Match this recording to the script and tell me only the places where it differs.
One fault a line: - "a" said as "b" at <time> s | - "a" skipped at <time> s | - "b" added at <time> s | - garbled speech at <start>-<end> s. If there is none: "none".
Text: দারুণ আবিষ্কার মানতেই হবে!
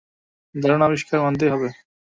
none